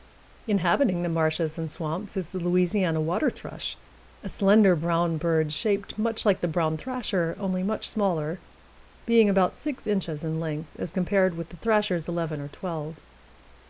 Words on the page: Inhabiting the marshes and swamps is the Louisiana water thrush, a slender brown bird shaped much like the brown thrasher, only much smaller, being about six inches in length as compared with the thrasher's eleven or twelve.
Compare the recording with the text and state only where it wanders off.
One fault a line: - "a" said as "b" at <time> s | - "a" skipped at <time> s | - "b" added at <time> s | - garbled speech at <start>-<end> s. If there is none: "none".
none